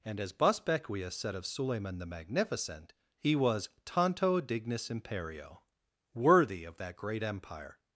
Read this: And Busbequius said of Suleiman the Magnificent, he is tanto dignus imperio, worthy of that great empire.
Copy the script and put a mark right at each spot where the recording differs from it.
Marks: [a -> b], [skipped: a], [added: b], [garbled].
And [added: as] Busbequius said of Suleiman the Magnificent, he [is -> was] tanto dignus imperio, worthy of that great empire.